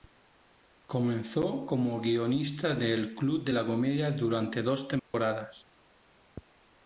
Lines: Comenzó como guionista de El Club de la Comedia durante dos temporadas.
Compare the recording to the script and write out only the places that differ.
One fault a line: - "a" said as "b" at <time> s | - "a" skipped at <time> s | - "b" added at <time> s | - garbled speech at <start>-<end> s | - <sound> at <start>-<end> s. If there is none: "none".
- dropout at 5.0-5.1 s